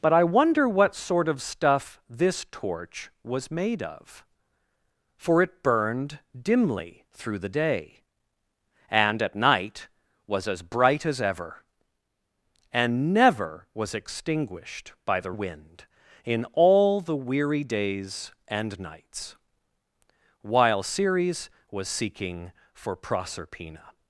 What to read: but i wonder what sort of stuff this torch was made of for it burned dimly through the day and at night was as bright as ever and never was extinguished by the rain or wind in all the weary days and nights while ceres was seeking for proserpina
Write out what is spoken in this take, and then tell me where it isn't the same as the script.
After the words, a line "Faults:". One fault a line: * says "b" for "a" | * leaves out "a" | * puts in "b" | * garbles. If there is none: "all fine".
but i wonder what sort of stuff this torch was made of for it burned dimly through the day and at night was as bright as ever and never was extinguished by the wind in all the weary days and nights while ceres was seeking for proserpina
Faults:
* leaves out "rain or"